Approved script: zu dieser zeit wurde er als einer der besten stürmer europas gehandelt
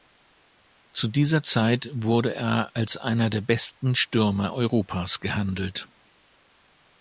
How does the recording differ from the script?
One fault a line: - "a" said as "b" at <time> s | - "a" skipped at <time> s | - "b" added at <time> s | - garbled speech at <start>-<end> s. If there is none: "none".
none